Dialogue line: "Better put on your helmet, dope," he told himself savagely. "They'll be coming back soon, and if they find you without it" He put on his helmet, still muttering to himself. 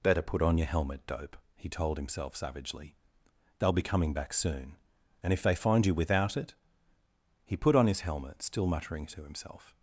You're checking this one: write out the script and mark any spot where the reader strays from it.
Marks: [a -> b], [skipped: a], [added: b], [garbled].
"Better put on your helmet, dope," he told himself savagely. "They'll be coming back soon, and if they find you without it" He put on his helmet, still muttering to himself.